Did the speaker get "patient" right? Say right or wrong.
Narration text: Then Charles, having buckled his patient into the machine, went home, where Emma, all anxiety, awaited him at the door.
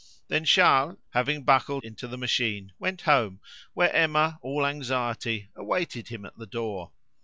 wrong